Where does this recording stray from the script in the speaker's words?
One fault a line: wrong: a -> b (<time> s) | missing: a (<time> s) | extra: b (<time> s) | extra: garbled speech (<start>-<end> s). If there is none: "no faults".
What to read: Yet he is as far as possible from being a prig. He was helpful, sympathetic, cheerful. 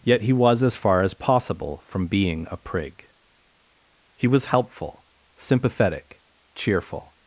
wrong: is -> was (0.3 s)